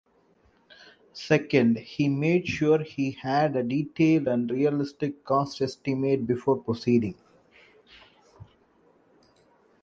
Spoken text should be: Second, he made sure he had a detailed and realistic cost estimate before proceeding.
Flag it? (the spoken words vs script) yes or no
no